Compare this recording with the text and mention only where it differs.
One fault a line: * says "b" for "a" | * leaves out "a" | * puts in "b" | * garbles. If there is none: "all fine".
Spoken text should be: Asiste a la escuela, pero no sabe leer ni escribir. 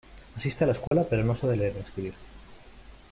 all fine